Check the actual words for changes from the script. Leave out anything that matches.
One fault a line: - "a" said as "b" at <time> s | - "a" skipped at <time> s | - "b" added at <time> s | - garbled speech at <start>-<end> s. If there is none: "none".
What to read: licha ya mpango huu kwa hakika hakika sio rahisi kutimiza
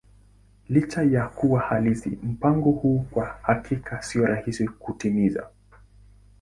- "kuwa halisi" added at 1.3 s
- "hakika" skipped at 4.0 s